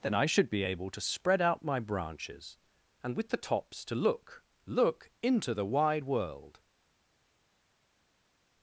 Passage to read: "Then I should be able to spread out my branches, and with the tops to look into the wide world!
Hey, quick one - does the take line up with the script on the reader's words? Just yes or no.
no